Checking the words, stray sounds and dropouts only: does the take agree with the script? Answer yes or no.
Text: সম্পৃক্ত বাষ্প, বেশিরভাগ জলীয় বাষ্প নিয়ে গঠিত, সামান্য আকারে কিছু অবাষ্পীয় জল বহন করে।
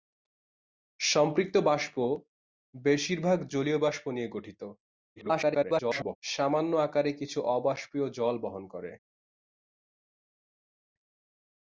no